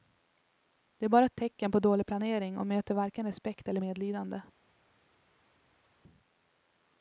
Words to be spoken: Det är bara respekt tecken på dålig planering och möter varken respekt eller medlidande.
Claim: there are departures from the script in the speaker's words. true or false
true